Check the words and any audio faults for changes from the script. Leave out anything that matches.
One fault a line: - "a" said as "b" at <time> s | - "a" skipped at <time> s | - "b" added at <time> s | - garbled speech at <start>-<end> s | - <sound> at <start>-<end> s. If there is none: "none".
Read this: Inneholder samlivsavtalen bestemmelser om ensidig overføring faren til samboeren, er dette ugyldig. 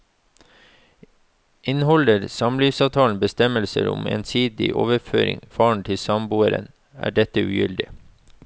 none